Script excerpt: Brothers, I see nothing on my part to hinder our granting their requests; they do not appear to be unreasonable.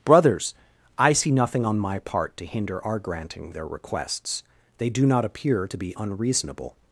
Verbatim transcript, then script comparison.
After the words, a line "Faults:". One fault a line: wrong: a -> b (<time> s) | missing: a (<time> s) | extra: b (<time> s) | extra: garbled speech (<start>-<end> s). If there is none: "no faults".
Brothers, I see nothing on my part to hinder our granting their requests; they do not appear to be unreasonable.
Faults:
no faults